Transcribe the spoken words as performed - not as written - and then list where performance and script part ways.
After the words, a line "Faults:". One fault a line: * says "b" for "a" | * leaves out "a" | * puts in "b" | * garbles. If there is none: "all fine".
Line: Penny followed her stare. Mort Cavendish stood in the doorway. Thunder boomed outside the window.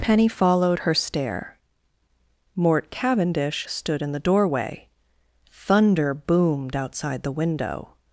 Penny followed her stare. Mort Cavendish stood in the doorway. Thunder boomed outside the window.
Faults:
all fine